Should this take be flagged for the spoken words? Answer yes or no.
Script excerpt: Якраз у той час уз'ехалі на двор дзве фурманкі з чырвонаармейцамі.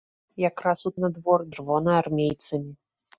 yes